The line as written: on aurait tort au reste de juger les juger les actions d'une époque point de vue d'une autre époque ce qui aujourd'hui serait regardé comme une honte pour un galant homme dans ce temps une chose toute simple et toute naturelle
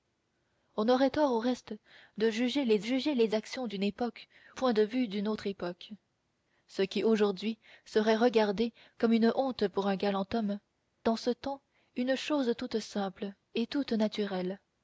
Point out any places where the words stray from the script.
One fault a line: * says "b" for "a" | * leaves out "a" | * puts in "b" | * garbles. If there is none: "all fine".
all fine